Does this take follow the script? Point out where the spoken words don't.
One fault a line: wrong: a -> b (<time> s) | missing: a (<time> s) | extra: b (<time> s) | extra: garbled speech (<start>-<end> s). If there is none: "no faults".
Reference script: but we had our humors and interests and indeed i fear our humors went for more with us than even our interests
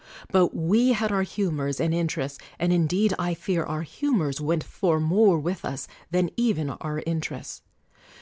no faults